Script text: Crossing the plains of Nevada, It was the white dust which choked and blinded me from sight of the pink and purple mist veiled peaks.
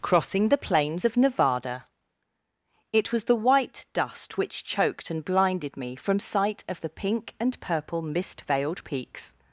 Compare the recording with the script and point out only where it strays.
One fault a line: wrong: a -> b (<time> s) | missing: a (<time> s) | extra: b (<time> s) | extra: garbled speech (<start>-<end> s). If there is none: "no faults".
no faults